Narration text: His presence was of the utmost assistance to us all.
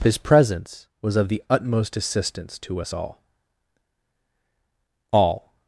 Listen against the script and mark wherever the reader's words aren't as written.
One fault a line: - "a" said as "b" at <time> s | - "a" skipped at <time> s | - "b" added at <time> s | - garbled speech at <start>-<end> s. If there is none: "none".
- "all" added at 5.1 s